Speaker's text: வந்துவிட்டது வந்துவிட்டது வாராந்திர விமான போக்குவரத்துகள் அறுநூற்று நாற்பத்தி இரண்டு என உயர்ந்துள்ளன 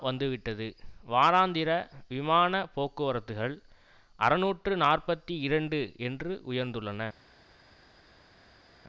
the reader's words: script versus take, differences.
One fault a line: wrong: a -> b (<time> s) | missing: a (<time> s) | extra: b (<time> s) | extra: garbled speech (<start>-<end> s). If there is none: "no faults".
missing: வந்துவிட்டது (0.7 s)
wrong: என -> என்று (6.0 s)